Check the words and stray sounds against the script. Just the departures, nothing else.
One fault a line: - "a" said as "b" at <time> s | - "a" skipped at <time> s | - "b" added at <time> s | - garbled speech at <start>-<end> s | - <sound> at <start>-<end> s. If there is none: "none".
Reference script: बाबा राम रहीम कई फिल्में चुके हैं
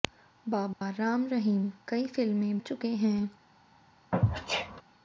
- dropout at 0.7-0.8 s
- sneeze at 4.1-4.8 s